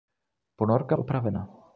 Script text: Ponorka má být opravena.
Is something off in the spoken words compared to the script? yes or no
yes